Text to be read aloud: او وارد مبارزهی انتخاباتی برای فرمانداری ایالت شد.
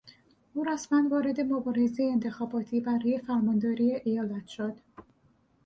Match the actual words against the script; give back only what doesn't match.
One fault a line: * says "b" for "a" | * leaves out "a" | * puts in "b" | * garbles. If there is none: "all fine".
* puts in "رسما"